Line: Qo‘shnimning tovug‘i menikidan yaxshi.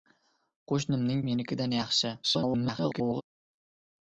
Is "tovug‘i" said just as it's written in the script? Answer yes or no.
no